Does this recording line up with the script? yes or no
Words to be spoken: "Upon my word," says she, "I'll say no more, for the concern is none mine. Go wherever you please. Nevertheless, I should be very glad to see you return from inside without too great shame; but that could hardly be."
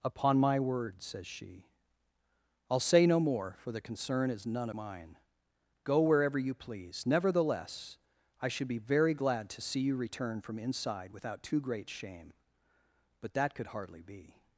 yes